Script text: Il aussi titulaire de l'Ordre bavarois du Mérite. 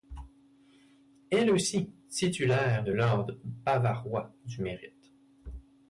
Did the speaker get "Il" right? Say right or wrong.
wrong